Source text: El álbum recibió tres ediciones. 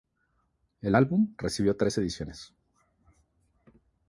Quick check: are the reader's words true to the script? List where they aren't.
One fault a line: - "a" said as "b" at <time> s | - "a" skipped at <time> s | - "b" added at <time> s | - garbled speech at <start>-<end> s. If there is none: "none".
none